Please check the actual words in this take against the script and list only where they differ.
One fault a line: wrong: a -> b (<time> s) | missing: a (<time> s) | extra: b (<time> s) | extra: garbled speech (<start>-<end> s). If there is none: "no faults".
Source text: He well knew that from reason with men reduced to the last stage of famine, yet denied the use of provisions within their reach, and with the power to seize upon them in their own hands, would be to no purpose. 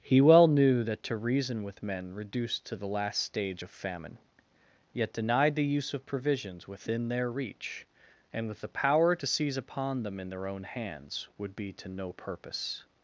wrong: from -> to (1.0 s)